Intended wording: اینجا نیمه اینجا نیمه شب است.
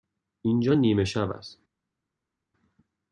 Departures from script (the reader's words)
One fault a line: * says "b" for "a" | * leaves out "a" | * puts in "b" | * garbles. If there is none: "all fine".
* leaves out "اینجا نیمه"